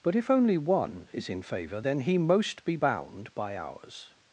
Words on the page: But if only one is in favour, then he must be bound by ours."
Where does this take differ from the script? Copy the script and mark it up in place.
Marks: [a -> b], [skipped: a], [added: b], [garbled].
But if only one is in favour, then he [must -> most] be bound by ours."